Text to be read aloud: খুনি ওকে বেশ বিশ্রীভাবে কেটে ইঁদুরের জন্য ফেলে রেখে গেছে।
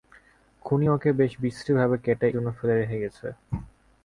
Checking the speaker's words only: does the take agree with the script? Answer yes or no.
no